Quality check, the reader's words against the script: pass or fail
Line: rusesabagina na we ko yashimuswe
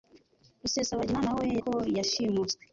pass